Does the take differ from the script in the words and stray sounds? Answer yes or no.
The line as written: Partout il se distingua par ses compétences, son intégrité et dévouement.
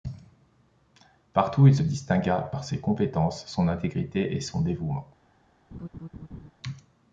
yes